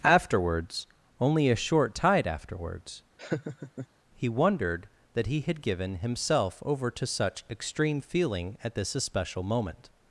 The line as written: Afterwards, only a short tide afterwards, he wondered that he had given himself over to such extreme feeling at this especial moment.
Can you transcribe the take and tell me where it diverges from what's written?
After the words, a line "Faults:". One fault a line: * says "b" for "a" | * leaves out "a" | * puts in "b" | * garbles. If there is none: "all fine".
Afterwards, only a short tide afterwards, he wondered that he had given himself over to such extreme feeling at this especial moment.
Faults:
all fine